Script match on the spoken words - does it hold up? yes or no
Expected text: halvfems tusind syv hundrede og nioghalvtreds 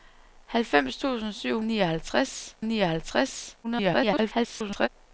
no